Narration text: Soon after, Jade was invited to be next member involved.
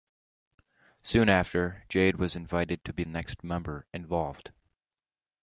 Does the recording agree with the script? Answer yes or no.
yes